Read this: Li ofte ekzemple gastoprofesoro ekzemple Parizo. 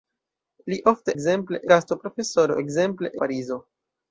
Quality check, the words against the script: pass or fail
pass